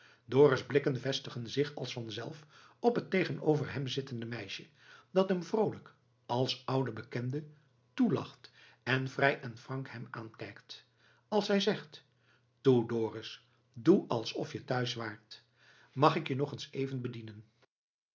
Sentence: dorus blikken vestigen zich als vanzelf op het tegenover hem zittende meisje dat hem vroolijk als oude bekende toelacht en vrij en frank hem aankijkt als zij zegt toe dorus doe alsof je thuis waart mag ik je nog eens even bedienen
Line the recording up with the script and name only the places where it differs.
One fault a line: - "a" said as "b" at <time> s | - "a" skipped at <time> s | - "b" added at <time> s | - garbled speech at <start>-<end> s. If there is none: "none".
none